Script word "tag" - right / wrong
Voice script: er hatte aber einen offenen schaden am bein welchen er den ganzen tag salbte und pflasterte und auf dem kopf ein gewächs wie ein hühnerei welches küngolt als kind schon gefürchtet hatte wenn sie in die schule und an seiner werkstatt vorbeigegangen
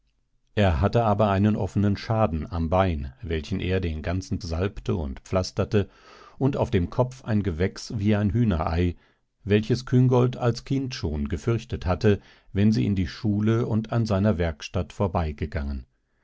wrong